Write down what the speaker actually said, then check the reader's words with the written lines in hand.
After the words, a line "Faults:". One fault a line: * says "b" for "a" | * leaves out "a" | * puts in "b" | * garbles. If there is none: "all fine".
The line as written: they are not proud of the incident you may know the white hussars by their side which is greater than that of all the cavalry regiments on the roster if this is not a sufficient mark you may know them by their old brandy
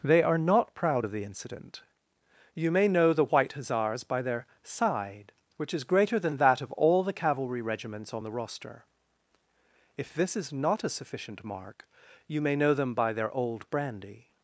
they are not proud of the incident you may know the white hussars by their side which is greater than that of all the cavalry regiments on the roster if this is not a sufficient mark you may know them by their old brandy
Faults:
all fine